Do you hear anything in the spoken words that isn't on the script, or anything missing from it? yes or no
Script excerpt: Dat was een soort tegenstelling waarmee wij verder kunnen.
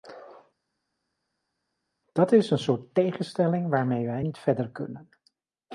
yes